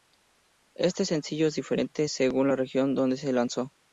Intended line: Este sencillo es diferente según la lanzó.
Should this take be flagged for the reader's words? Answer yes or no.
yes